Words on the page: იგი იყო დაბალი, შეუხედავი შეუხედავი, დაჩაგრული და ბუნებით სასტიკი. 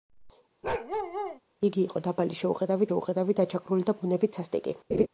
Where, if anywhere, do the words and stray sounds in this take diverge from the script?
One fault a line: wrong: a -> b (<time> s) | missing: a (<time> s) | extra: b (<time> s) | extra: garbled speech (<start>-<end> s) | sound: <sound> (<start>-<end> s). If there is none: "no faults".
sound: bark (0.6-1.4 s)
sound: laugh (4.9-5.1 s)